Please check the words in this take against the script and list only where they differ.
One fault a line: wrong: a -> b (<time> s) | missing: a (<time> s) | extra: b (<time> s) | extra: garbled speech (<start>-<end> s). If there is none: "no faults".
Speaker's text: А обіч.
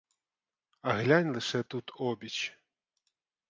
extra: глянь лише тут (1.0 s)